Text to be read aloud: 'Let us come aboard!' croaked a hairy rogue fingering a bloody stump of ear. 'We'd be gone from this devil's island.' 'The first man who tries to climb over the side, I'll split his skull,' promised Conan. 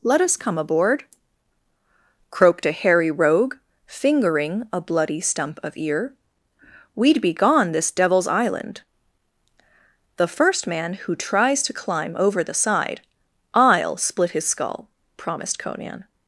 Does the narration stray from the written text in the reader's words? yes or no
yes